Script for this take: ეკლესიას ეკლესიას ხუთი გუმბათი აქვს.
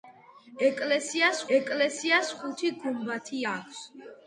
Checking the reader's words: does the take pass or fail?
pass